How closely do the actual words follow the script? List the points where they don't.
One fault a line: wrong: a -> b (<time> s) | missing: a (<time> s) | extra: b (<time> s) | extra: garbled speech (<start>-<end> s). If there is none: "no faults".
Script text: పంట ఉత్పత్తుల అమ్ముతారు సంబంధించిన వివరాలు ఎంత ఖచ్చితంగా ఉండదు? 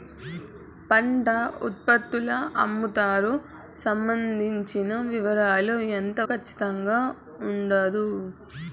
no faults